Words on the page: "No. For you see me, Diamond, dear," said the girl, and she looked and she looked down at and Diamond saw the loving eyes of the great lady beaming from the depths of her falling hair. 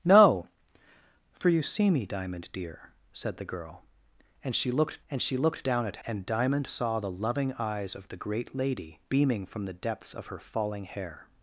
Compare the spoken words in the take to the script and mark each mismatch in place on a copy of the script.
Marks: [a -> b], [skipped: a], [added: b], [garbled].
"No. For you see me, Diamond, dear," said the girl, and she looked and she looked down at and Diamond saw the loving eyes of the great lady beaming from the depths of her falling hair.